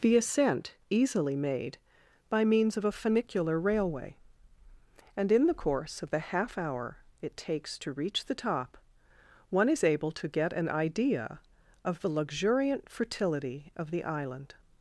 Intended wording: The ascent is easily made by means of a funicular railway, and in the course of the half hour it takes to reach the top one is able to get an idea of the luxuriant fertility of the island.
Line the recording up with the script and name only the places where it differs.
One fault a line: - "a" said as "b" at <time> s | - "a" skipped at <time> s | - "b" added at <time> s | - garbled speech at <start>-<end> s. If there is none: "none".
- "is" skipped at 0.8 s